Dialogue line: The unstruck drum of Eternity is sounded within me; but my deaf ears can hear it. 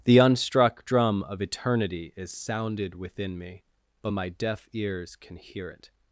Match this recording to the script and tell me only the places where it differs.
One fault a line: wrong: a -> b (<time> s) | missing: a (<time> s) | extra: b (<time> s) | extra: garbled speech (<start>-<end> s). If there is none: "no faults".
no faults